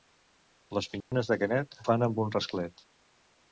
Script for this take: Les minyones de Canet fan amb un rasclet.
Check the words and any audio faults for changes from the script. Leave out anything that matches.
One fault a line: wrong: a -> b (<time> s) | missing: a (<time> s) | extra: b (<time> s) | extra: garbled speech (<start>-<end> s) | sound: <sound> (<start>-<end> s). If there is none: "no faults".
sound: dropout (1.0-1.1 s)